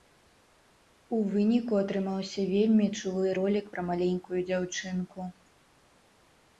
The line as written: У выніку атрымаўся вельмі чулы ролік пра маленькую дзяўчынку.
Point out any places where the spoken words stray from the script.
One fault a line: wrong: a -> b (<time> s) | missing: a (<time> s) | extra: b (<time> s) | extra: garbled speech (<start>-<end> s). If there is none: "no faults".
no faults